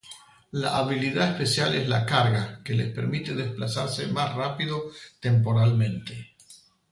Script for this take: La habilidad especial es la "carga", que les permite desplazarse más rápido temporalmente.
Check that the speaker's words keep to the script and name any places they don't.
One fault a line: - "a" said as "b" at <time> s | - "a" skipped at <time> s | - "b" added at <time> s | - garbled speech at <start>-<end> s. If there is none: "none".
none